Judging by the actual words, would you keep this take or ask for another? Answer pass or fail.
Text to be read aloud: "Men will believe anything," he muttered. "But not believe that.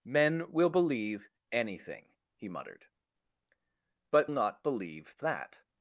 pass